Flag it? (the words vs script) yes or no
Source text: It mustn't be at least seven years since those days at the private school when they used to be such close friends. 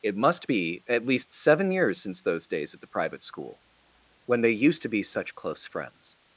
yes